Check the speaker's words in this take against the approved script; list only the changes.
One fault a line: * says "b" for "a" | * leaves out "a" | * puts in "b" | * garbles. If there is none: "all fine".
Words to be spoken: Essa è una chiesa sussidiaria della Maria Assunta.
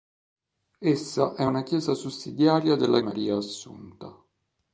all fine